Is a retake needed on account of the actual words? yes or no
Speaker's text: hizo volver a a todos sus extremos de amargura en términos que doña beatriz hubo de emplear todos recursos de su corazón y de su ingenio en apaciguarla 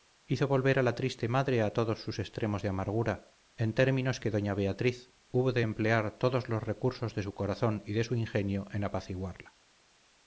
yes